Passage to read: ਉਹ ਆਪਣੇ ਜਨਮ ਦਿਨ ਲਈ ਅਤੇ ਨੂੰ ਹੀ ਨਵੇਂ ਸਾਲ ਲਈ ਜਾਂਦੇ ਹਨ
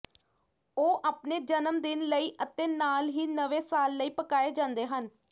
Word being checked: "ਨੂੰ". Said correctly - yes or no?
no